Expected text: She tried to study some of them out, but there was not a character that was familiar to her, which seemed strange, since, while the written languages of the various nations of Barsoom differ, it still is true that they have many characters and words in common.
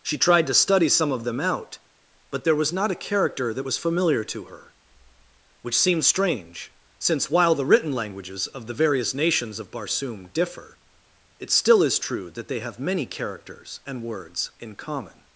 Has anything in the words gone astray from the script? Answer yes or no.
yes